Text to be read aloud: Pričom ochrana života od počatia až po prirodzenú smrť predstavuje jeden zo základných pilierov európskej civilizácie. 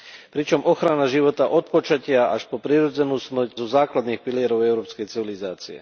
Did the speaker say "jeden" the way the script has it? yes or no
no